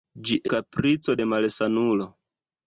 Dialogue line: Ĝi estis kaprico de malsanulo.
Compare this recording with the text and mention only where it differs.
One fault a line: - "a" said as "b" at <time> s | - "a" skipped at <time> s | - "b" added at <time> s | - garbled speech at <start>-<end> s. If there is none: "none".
- "estis" skipped at 0.4 s